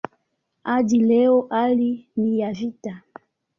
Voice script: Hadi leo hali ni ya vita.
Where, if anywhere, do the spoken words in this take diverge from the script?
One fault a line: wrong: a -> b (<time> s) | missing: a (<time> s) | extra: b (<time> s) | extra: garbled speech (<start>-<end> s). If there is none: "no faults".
no faults